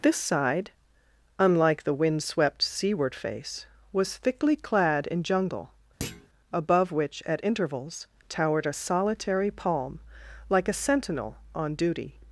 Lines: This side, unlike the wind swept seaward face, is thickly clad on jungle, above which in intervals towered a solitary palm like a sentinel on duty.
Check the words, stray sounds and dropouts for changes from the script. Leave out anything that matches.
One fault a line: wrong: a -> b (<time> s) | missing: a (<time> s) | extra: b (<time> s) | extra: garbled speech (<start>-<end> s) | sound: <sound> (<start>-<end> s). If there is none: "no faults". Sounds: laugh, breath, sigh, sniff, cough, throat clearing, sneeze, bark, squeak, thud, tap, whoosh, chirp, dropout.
wrong: is -> was (3.9 s)
wrong: on -> in (5.1 s)
sound: thud (6.0-6.3 s)
wrong: in -> at (7.3 s)